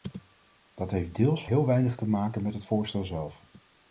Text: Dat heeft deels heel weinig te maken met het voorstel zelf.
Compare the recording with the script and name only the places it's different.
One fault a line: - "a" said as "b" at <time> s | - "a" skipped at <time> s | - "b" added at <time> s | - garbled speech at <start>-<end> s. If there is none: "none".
none